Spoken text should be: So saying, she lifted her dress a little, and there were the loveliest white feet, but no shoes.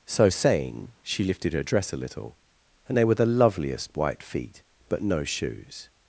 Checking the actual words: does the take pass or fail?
fail